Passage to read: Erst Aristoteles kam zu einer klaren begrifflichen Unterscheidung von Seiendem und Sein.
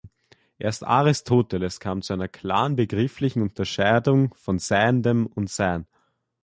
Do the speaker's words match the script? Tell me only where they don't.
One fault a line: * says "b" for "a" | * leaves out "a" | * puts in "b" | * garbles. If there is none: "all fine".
all fine